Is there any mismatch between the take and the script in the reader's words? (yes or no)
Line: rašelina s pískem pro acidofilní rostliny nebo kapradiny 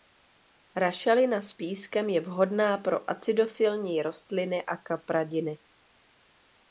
yes